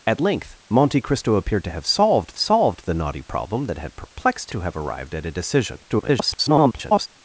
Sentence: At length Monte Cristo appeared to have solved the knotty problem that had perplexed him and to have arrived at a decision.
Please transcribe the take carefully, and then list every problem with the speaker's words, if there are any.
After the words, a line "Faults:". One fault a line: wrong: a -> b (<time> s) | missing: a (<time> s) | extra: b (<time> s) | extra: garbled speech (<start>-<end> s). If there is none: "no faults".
At length Monte Cristo appeared to have solved solved the knotty problem that had perplexed to have arrived at a decision. [garbled]
Faults:
extra: solved (2.4 s)
missing: him and (4.5 s)
extra: garbled speech (5.9-7.1 s)